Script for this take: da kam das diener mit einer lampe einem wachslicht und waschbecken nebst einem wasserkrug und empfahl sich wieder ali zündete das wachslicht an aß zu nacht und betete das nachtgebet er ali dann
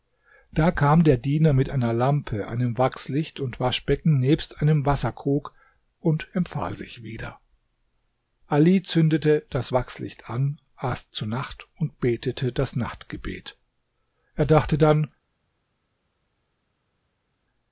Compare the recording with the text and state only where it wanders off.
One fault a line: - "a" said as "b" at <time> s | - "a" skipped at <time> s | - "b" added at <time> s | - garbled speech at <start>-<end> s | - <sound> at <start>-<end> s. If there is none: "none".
- "das" said as "der" at 1.0 s
- "ali" said as "dachte" at 14.5 s